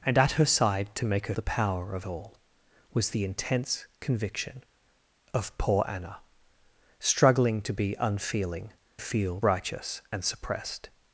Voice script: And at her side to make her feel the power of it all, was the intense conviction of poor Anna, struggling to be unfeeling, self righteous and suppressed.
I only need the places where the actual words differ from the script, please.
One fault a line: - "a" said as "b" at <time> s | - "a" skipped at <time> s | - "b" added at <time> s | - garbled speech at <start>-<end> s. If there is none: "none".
- "feel" skipped at 1.4 s
- "it" skipped at 2.1 s
- "self" said as "feel" at 9.0 s